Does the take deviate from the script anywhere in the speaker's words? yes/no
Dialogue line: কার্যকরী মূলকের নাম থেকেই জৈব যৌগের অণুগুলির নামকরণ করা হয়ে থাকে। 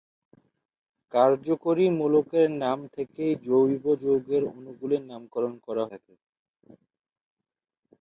yes